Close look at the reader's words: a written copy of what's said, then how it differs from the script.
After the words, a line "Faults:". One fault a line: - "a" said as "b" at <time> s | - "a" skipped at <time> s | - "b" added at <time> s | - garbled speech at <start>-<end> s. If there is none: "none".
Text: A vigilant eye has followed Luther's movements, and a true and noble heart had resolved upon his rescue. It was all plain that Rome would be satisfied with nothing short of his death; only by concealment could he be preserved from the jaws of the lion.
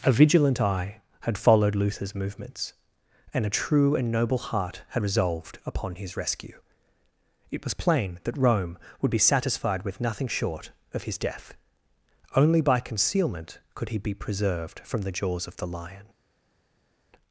A vigilant eye had followed Luther's movements, and a true and noble heart had resolved upon his rescue. It was plain that Rome would be satisfied with nothing short of his death; only by concealment could he be preserved from the jaws of the lion.
Faults:
- "has" said as "had" at 1.2 s
- "all" skipped at 7.7 s